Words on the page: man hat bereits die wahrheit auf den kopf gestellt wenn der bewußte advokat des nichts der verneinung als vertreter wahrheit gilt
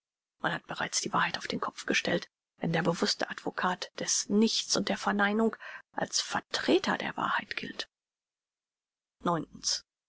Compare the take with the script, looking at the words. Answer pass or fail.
fail